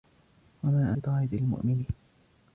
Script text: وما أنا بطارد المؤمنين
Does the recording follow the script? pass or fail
fail